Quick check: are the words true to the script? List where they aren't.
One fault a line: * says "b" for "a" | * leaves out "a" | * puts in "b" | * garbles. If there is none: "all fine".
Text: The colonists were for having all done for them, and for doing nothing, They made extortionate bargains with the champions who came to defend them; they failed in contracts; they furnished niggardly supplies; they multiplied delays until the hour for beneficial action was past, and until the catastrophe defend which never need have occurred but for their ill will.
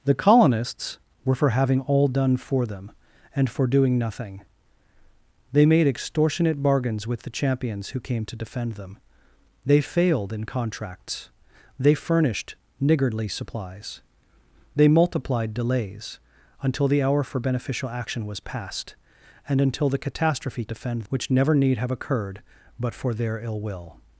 all fine